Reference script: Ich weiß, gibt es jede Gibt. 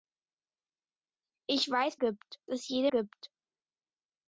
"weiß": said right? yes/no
yes